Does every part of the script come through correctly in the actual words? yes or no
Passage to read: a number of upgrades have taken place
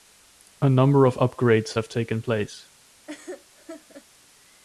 yes